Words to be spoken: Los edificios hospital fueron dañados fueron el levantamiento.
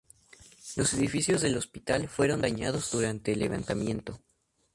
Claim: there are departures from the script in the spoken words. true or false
true